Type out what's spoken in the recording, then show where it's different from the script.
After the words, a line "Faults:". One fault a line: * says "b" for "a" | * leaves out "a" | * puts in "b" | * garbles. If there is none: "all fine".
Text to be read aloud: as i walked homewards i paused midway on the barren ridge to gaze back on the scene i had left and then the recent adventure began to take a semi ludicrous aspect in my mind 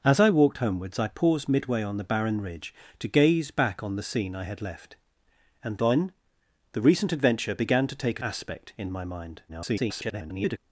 as i walked homewards i paused midway on the barren ridge to gaze back on the scene i had left and then the recent adventure began to take a aspect in my mind [garbled]
Faults:
* leaves out "semi ludicrous"
* garbles